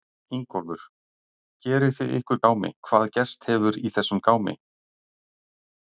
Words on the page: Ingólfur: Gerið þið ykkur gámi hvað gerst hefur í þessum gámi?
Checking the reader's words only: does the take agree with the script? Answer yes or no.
yes